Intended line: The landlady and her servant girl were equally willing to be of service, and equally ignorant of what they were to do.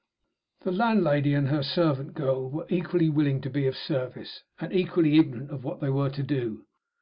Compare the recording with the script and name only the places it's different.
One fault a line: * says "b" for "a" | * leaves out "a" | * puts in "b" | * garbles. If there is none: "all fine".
all fine